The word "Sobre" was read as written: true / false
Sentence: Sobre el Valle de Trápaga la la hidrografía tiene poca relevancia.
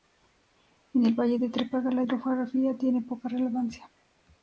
false